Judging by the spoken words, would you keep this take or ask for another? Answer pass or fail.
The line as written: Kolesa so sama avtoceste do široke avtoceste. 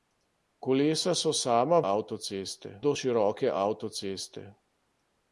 pass